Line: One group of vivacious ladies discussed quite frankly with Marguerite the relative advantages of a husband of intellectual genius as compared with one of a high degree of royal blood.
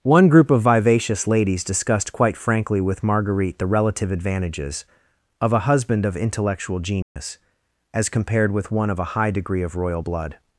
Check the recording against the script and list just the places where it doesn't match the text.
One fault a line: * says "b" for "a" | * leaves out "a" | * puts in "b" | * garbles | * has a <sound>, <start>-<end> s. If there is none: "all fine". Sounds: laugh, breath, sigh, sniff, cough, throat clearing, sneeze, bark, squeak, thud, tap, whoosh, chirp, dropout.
* has a dropout, 7.0-7.2 s